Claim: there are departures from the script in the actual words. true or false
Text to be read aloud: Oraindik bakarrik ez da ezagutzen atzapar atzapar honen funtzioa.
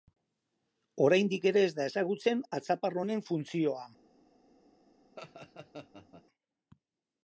true